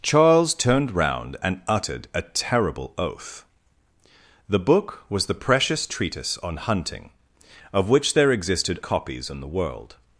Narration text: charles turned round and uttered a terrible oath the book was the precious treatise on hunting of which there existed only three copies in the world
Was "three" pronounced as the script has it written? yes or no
no